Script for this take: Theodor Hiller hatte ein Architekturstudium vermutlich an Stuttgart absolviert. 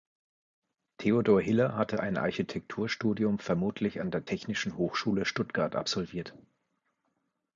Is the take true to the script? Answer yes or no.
no